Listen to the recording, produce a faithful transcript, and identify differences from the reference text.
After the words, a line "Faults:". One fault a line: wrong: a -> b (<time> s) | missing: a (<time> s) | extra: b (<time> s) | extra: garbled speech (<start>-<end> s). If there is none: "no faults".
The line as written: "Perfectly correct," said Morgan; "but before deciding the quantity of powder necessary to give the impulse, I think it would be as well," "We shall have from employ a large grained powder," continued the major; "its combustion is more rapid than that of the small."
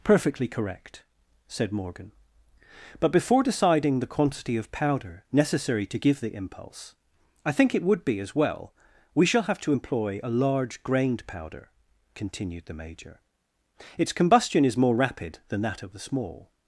"Perfectly correct," said Morgan; "but before deciding the quantity of powder necessary to give the impulse, I think it would be as well," "We shall have to employ a large grained powder," continued the major; "its combustion is more rapid than that of the small."
Faults:
wrong: from -> to (9.6 s)